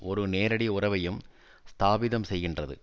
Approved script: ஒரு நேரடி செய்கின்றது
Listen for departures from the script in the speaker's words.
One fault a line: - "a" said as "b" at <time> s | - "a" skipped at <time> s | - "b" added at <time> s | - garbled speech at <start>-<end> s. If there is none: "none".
- "உறவையும் ஸ்தாபிதம்" added at 0.7 s